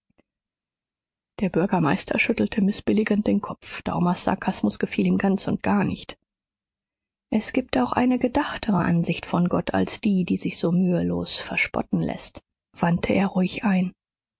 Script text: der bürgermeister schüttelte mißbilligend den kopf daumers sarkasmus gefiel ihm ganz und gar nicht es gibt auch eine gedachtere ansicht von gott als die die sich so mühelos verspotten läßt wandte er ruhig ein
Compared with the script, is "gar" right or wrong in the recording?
right